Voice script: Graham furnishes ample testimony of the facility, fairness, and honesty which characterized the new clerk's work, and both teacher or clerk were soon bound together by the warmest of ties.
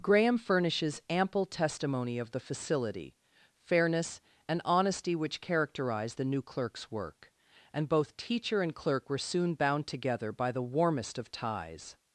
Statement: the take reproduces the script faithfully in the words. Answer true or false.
false